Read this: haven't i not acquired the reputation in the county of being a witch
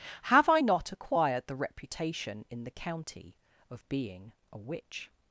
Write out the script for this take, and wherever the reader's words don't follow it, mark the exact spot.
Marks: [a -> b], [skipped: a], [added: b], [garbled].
[haven't -> have] i not acquired the reputation in the county of being a witch